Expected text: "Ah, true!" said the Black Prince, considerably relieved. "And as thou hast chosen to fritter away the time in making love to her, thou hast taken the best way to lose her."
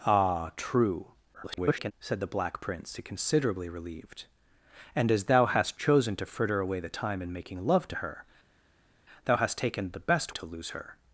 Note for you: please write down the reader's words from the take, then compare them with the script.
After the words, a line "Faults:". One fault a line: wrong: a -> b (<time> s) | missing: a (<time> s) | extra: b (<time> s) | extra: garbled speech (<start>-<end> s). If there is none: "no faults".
"Ah, true!" [garbled] said the Black Prince, considerably relieved. "And as thou hast chosen to fritter away the time in making love to her, thou hast taken the best to lose her."
Faults:
extra: garbled speech (1.3-1.9 s)
missing: way (10.3 s)